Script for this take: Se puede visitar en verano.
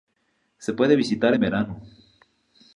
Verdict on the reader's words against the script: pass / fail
pass